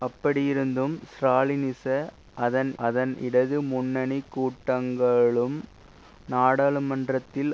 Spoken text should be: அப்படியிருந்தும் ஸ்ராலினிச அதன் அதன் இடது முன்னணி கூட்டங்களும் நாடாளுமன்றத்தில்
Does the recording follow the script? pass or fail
pass